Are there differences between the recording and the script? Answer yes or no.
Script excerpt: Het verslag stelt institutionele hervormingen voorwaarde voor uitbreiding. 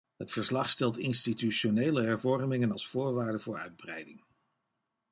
yes